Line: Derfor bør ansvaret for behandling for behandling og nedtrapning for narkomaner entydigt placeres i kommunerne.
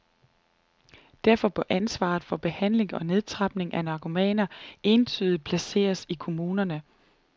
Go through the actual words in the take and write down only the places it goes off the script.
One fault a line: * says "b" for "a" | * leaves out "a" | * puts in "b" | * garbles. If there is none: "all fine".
* leaves out "for behandling"
* says "af" for "for"